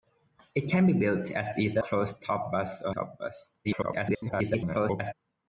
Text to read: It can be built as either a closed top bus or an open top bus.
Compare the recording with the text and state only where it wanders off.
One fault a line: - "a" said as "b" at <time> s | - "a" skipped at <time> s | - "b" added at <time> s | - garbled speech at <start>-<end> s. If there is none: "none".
- "a" skipped at 1.8 s
- "an open" skipped at 3.0 s
- garbled speech at 3.6-5.1 s